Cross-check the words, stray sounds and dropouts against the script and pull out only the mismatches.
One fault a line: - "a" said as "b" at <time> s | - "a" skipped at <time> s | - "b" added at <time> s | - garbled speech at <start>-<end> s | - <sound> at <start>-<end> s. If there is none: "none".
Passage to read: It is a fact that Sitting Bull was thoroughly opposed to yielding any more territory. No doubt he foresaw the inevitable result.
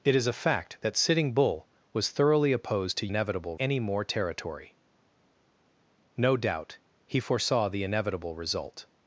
- "yielding" said as "inevitable" at 3.1 s